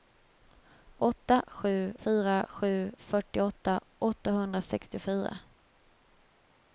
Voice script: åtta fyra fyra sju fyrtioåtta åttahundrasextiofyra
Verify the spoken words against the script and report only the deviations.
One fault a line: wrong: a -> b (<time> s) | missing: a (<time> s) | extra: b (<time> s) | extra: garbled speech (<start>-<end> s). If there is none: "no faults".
wrong: fyra -> sju (1.5 s)